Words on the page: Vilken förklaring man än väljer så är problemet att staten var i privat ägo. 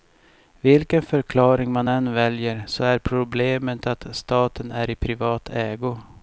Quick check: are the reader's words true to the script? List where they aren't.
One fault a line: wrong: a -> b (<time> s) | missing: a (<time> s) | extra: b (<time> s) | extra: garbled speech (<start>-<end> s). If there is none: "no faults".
wrong: var -> är (4.7 s)